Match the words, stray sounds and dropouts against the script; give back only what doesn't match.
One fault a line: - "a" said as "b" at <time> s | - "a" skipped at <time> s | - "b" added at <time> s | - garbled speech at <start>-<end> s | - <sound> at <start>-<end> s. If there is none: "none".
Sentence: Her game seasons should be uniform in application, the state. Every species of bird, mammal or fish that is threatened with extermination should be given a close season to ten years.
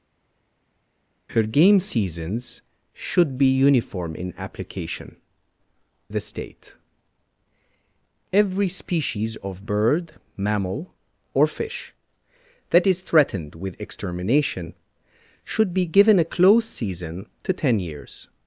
none